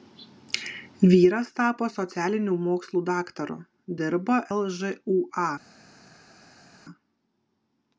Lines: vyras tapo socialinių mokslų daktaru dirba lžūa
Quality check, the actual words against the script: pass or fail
pass